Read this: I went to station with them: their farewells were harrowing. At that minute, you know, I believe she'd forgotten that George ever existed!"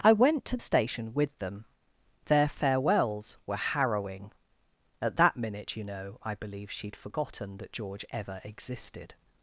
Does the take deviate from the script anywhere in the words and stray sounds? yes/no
no